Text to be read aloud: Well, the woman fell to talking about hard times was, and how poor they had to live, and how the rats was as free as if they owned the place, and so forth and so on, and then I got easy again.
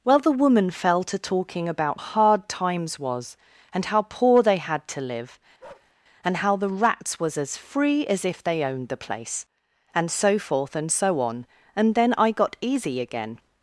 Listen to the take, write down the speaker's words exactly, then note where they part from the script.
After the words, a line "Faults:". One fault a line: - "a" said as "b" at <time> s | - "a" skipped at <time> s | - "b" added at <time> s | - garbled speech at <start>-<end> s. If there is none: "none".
Well, the woman fell to talking about hard times was, and how poor they had to live, and how the rats was as free as if they owned the place, and so forth and so on, and then I got easy again.
Faults:
none